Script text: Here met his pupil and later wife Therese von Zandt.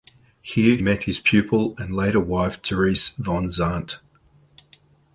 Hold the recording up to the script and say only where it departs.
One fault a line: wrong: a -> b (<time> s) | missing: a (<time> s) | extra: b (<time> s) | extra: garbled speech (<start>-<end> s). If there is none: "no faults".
no faults